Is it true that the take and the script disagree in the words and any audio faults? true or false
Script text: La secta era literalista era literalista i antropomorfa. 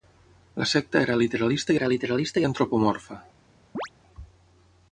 true